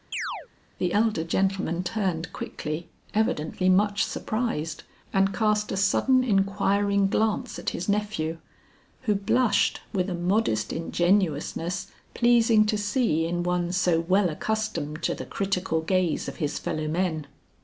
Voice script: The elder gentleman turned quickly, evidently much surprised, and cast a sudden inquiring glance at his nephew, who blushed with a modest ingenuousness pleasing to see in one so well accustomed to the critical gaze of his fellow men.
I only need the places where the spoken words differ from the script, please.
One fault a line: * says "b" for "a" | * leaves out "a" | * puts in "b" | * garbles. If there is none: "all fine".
all fine